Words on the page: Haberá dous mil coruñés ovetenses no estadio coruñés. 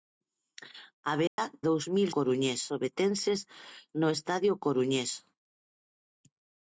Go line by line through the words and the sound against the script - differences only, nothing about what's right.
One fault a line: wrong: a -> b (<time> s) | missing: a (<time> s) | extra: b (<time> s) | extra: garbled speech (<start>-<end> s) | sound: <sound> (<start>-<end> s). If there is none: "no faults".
sound: dropout (1.3-1.4 s)